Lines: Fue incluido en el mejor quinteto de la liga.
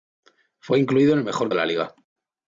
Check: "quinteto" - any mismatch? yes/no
yes